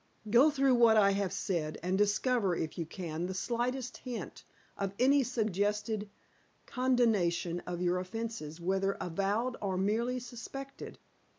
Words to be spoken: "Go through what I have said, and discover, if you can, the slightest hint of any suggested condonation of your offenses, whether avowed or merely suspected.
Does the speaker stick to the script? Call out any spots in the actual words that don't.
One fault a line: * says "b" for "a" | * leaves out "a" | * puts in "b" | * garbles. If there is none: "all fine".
all fine